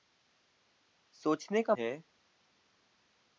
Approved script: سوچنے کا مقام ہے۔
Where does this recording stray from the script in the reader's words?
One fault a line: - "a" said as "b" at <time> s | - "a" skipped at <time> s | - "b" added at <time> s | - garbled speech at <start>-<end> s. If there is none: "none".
- "مقام" skipped at 1.7 s